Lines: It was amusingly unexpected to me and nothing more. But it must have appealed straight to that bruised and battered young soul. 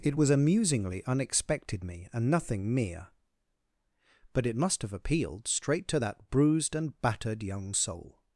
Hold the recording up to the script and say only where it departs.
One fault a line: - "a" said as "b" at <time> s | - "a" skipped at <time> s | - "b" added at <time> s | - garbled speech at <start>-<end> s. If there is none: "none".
- "to" skipped at 1.8 s
- "more" said as "mere" at 2.7 s